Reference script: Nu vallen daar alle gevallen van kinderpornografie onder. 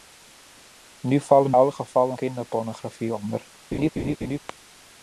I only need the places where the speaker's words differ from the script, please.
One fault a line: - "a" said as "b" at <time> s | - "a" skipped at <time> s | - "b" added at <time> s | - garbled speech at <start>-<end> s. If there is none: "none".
- "daar" skipped at 1.5 s
- "van" skipped at 2.2 s